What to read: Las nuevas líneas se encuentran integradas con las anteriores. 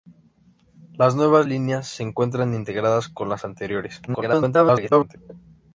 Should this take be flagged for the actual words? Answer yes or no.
yes